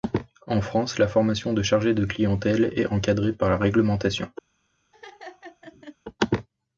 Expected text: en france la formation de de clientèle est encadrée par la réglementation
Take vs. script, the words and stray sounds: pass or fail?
fail